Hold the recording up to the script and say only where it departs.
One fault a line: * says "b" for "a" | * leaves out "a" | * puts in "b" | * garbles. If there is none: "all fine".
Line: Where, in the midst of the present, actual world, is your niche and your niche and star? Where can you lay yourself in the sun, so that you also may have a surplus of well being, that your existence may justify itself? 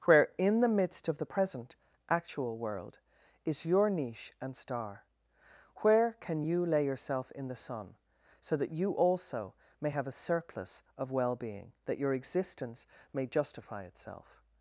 * leaves out "your niche and"